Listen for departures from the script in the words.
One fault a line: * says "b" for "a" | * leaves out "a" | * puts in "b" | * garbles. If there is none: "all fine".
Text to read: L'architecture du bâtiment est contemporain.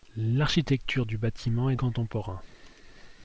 all fine